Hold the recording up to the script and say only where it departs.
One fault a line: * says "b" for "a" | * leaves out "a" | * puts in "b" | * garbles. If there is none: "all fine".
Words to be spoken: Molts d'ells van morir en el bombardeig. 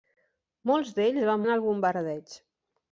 * leaves out "morir"